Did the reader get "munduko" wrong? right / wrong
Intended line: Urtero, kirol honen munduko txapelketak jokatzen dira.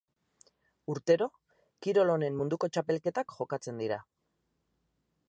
right